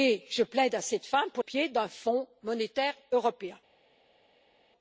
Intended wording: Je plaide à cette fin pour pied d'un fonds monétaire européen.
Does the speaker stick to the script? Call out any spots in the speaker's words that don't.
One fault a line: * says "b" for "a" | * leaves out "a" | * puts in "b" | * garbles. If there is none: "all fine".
all fine